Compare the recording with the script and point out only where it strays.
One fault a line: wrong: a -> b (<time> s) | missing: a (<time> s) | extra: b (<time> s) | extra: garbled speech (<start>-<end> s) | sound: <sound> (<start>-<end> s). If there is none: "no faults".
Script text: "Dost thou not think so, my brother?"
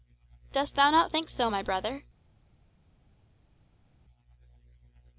no faults